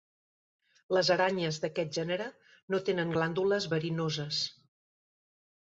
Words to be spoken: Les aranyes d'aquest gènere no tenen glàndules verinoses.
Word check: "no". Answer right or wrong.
right